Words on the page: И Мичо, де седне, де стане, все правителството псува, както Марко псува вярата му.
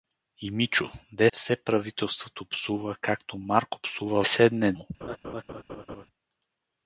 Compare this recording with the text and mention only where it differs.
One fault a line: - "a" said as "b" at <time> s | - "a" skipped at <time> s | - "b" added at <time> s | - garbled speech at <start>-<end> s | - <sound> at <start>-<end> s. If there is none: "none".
- "седне де стане" skipped at 1.3 s
- "вярата" said as "седне" at 4.2 s
- laugh at 5.0-6.1 s